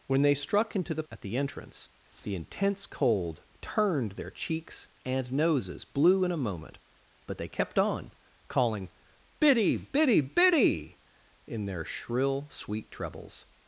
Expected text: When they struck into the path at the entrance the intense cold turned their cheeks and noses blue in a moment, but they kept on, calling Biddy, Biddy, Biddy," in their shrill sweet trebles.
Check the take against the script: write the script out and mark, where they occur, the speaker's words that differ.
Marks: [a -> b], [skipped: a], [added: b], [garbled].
When they struck into the [skipped: path] at the entrance the intense cold turned their cheeks and noses blue in a moment, but they kept on, calling Biddy, Biddy, Biddy," in their shrill sweet trebles.